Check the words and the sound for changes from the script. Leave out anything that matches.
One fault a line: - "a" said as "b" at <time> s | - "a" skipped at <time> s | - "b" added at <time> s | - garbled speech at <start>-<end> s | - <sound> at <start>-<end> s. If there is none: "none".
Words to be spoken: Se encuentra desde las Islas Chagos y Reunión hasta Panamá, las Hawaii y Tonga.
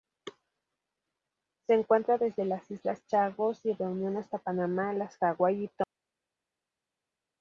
none